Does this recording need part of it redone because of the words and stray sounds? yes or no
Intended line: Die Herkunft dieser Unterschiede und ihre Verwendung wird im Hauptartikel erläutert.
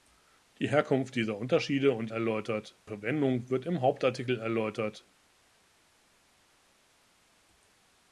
yes